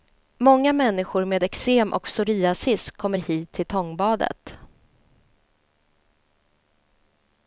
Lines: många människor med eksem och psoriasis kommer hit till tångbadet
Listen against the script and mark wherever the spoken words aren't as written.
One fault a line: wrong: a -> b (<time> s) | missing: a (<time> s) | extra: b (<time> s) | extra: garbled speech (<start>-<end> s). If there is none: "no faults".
no faults